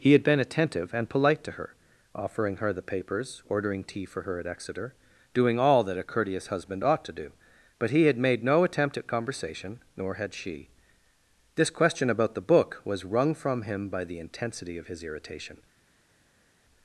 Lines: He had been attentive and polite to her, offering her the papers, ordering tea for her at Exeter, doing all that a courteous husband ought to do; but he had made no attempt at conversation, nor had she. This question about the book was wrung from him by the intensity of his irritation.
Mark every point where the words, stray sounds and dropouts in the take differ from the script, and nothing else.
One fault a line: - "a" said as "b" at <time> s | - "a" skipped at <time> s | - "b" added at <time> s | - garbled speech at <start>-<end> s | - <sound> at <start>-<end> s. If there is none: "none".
none